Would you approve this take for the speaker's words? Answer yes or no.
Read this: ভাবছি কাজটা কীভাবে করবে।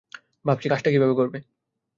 yes